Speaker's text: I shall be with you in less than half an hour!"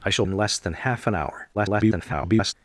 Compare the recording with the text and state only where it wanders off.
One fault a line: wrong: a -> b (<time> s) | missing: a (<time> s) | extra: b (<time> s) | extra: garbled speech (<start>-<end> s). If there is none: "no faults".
missing: be with you (0.2 s)
extra: garbled speech (1.5-2.5 s)